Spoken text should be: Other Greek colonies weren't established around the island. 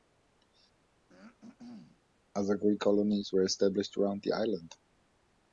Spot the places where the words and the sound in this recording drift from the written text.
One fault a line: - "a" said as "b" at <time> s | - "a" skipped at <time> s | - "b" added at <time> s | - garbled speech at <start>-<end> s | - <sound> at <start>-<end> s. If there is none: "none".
- throat clearing at 1.1-2.0 s
- "weren't" said as "were" at 3.3 s